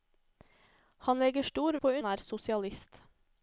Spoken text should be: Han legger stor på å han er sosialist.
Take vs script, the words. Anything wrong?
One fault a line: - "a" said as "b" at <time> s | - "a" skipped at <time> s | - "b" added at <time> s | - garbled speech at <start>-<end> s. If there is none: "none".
none